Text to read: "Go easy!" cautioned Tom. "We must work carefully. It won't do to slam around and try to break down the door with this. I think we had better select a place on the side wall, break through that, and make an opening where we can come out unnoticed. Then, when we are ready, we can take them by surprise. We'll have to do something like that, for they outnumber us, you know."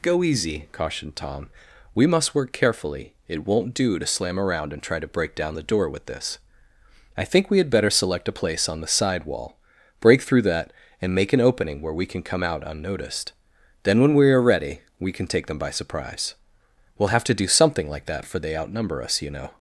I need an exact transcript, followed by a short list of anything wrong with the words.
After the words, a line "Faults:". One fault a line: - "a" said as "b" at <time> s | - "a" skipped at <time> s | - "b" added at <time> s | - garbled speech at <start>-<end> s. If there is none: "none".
"Go easy!" cautioned Tom. "We must work carefully. It won't do to slam around and try to break down the door with this. I think we had better select a place on the side wall, break through that, and make an opening where we can come out unnoticed. Then, when we are ready, we can take them by surprise. We'll have to do something like that, for they outnumber us, you know."
Faults:
none